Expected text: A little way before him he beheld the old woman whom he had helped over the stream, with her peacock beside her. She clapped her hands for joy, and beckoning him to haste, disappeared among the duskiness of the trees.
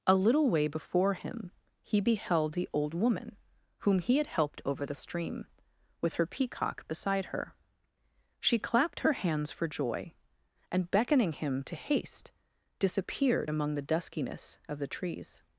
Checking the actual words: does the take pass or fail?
pass